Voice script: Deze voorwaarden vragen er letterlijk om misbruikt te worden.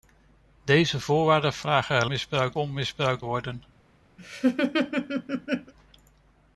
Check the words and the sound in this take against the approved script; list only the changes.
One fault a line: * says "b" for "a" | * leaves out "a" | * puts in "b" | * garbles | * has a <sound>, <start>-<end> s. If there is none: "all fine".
* says "misbruikt" for "letterlijk"
* leaves out "te"
* has a laugh, 4.2-5.7 s